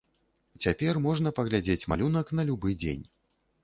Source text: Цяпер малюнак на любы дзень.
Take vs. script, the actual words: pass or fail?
fail